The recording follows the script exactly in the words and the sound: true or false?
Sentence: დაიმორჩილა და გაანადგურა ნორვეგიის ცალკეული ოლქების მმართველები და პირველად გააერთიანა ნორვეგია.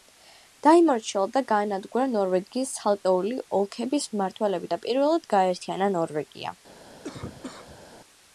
false